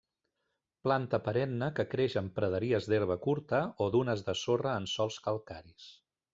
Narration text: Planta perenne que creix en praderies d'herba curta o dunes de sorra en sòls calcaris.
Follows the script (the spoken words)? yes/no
yes